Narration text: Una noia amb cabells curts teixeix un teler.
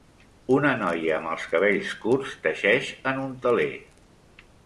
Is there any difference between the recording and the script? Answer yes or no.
yes